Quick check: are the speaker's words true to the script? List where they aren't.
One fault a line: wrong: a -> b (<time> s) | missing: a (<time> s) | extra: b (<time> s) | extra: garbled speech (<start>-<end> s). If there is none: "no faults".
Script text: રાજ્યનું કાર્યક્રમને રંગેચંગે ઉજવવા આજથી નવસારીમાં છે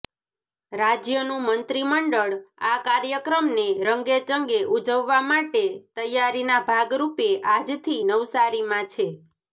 extra: મંત્રીમંડળ આ (1.5 s)
extra: માટે તૈયારીના ભાગરૂપે (5.3 s)